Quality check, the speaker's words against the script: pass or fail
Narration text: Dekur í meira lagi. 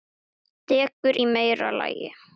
pass